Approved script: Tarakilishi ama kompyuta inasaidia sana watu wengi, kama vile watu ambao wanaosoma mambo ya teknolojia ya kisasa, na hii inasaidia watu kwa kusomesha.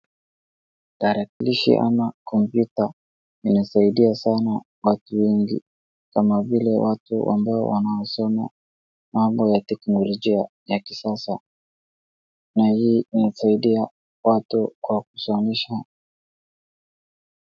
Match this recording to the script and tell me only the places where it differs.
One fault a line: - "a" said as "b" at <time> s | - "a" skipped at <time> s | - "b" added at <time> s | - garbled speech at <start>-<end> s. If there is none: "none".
none